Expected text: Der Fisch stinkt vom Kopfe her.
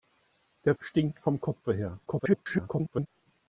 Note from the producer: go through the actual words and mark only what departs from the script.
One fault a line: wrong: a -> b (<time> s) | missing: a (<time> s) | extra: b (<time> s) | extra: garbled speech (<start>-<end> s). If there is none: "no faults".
missing: Fisch (0.7 s)
extra: garbled speech (2.1-3.1 s)